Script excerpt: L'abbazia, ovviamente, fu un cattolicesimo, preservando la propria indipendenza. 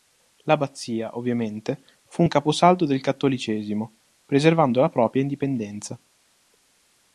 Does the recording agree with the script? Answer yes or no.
no